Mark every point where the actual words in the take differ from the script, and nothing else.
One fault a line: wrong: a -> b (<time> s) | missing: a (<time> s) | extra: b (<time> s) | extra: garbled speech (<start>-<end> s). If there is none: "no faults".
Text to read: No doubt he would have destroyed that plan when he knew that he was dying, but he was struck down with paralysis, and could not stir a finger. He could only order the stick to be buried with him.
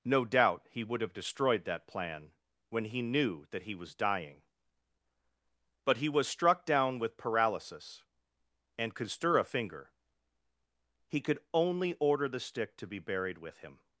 missing: not (9.1 s)